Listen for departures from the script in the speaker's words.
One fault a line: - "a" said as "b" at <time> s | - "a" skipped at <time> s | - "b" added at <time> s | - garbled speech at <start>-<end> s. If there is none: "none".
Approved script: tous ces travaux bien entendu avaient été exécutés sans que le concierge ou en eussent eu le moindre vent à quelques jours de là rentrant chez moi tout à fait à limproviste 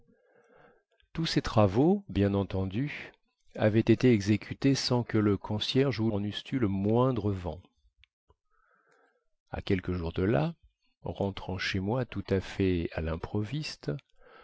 none